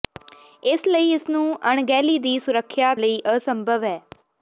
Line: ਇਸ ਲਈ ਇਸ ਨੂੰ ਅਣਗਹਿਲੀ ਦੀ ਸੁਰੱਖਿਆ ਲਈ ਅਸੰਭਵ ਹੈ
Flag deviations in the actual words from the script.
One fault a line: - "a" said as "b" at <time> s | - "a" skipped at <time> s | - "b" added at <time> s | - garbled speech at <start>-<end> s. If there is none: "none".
none